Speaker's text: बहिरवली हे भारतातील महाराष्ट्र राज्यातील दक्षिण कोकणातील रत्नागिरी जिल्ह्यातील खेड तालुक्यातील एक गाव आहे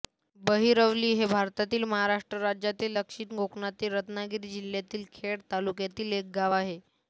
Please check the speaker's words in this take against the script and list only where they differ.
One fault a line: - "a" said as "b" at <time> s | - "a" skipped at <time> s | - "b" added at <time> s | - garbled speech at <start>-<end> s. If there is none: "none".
none